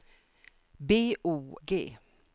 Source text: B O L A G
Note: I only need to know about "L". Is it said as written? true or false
false